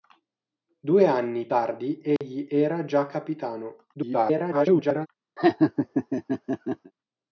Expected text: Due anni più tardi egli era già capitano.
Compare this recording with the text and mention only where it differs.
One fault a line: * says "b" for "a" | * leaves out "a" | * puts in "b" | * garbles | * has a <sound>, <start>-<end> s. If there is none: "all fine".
* leaves out "più"
* has a dropout, 2.2-2.2 s
* garbles
* has a laugh, 5.4-6.9 s